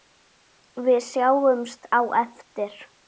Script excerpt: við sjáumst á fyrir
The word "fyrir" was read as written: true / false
false